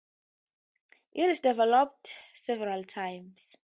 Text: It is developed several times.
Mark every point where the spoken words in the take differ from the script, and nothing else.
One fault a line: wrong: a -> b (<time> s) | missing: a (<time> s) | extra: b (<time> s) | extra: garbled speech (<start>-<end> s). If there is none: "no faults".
no faults